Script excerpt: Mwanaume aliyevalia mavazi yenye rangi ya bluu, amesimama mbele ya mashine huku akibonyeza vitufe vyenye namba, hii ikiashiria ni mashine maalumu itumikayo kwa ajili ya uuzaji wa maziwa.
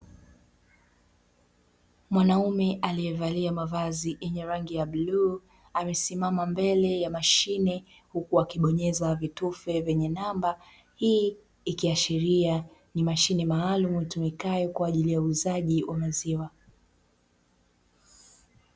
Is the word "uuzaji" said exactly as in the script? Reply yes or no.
yes